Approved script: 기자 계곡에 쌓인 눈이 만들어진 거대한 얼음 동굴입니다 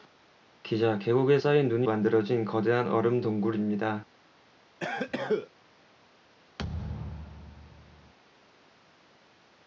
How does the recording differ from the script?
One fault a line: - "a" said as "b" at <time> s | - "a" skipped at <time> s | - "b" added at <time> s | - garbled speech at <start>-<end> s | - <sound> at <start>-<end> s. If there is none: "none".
- cough at 4.8-5.5 s
- thud at 6.6-8.1 s